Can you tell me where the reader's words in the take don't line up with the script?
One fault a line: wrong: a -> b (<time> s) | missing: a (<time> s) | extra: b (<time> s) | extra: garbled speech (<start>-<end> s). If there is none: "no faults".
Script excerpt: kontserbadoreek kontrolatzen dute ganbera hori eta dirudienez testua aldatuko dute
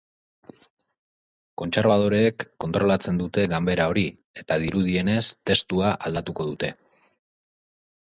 no faults